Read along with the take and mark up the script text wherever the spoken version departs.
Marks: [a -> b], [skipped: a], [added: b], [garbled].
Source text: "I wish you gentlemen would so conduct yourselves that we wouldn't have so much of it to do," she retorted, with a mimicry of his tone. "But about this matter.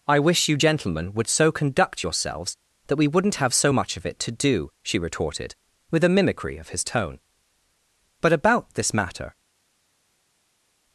"I wish you gentlemen would so conduct yourselves that we wouldn't have so much of it to do," she retorted, with a mimicry of his tone. "But about this matter.